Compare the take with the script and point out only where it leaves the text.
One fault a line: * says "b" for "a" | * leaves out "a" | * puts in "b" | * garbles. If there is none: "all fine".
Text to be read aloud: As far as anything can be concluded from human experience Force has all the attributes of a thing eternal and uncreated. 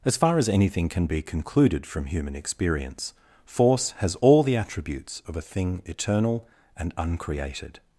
all fine